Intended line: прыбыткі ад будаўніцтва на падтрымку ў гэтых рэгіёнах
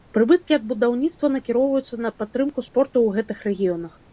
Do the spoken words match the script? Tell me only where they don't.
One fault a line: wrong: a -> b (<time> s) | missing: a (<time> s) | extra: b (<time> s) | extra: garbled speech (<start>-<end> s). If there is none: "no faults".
extra: накіроўваюцца (1.4 s)
extra: спорту (2.7 s)